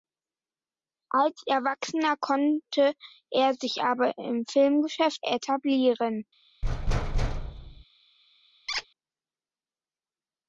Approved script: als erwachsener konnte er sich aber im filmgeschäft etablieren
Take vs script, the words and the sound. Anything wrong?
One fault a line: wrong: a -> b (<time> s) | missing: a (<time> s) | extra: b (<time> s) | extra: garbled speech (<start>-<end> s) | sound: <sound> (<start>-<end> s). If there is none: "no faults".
sound: thud (6.6-7.8 s)
sound: squeak (8.7-8.9 s)